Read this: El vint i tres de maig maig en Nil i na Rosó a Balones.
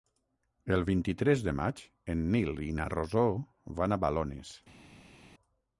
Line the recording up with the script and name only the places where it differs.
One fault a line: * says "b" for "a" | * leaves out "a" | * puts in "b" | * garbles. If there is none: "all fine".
* leaves out "maig"
* puts in "van"